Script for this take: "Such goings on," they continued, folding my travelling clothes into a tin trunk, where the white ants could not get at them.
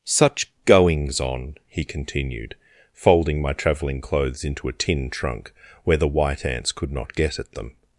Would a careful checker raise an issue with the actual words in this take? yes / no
yes